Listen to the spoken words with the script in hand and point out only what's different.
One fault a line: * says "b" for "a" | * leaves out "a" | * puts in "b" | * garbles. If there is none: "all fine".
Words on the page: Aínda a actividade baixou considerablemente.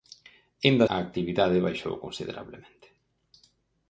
all fine